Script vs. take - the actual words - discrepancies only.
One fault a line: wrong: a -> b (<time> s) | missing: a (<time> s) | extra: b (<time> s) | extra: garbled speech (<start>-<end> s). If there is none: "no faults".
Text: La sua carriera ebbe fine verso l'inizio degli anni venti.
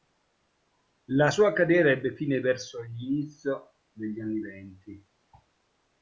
no faults